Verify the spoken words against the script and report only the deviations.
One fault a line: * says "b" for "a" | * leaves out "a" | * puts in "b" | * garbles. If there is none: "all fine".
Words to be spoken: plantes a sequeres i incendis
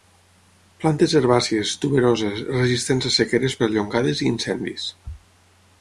* puts in "herbàcies tuberoses resistents"
* puts in "perllongades"